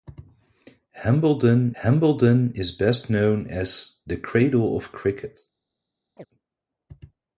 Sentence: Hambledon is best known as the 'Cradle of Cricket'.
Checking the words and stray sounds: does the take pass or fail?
fail